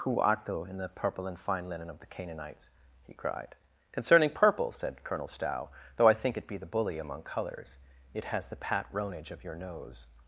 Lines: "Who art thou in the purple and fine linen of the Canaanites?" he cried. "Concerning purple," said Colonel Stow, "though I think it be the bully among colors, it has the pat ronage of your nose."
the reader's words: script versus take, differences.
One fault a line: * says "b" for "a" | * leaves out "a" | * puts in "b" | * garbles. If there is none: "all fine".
all fine